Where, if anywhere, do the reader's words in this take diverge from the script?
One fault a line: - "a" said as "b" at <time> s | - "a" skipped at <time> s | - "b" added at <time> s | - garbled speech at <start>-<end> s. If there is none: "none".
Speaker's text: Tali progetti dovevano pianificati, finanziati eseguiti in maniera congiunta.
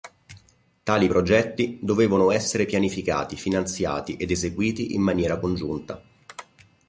- "essere" added at 2.3 s
- "ed" added at 4.2 s